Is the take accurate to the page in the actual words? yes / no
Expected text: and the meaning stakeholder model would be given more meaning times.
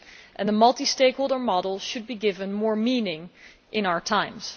no